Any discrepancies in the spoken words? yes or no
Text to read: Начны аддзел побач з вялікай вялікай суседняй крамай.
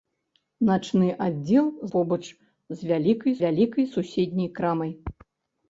no